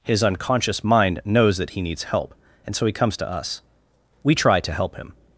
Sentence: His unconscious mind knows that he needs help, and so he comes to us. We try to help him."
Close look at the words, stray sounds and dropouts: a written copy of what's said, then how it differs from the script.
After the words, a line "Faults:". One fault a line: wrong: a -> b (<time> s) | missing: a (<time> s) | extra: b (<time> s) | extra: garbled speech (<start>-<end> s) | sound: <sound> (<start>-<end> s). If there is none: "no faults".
His unconscious mind knows that he needs help, and so he comes to us. We try to help him."
Faults:
no faults